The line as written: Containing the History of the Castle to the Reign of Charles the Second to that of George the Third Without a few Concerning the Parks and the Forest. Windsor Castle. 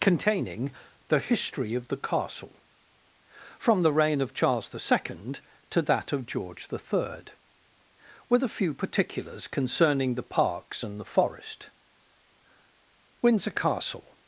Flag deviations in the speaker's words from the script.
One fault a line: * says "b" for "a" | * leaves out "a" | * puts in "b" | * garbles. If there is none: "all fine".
* says "from" for "to"
* says "With" for "Without"
* puts in "Particulars"